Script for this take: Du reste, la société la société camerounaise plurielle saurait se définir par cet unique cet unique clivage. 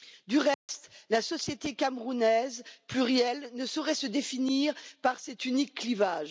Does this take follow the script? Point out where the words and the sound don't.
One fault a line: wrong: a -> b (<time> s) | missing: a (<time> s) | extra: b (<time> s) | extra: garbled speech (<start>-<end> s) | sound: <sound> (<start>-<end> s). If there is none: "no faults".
sound: dropout (0.5-0.7 s)
missing: la société (1.8 s)
extra: ne (3.5 s)
missing: cet unique (5.8 s)